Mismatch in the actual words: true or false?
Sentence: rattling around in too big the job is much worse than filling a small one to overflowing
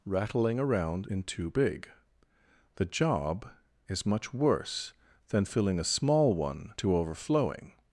false